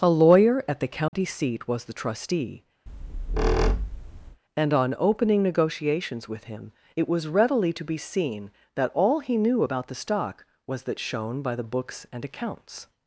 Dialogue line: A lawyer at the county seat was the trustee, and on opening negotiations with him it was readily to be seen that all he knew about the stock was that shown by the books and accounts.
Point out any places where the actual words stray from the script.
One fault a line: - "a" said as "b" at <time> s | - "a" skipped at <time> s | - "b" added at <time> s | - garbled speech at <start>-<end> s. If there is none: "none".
none